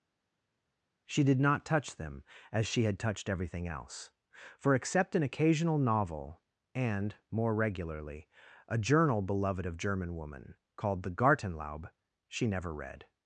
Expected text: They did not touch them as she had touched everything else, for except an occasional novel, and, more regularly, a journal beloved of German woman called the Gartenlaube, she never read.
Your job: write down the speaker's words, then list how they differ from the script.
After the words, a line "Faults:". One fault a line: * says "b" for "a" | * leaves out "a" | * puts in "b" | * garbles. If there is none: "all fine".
She did not touch them as she had touched everything else, for except an occasional novel, and, more regularly, a journal beloved of German woman called the Gartenlaube, she never read.
Faults:
* says "She" for "They"